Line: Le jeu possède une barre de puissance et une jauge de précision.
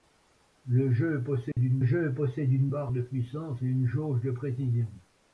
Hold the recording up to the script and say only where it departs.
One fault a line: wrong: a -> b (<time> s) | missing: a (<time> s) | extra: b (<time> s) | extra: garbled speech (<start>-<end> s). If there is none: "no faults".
extra: jeu possède une (1.8 s)